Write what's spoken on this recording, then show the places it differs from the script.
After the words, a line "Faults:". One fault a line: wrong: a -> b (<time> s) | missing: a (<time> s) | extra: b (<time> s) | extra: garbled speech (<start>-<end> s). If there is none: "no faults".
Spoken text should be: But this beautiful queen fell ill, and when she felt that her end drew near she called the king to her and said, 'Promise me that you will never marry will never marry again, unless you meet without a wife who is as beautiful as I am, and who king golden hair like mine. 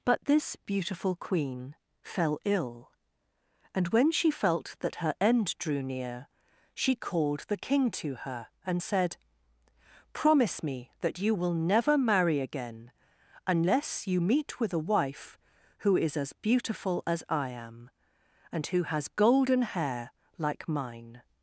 But this beautiful queen fell ill, and when she felt that her end drew near she called the king to her and said, 'Promise me that you will never marry again, unless you meet with a wife who is as beautiful as I am, and who has golden hair like mine.
Faults:
missing: will never marry (12.4 s)
wrong: without -> with (14.6 s)
wrong: king -> has (18.8 s)